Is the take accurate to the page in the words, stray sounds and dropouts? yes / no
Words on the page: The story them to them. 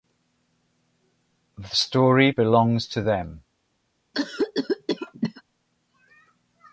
no